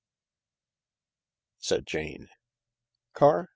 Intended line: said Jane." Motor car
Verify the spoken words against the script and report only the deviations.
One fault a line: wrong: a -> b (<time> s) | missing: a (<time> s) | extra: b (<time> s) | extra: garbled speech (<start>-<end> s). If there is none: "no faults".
missing: Motor (2.3 s)